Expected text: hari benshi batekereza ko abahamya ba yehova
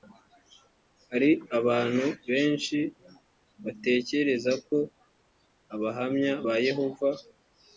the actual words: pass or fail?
fail